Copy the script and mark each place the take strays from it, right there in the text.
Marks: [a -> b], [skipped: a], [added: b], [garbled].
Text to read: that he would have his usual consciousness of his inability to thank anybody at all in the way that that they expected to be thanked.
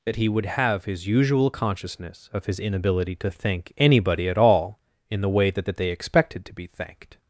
that he would have his usual consciousness of his inability to thank anybody at all in the way that that they expected to be thanked.